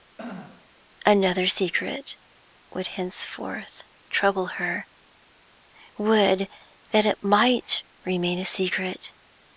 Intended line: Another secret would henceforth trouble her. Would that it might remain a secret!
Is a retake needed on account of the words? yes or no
no